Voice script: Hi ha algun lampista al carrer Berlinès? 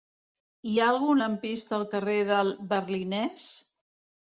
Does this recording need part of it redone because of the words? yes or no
yes